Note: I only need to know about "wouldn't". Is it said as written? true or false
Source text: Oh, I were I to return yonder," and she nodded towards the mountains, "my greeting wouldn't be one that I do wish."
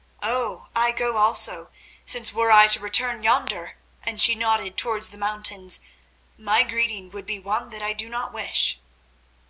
false